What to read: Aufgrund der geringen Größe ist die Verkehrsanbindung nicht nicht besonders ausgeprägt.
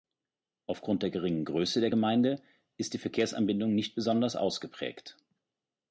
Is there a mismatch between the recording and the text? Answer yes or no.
yes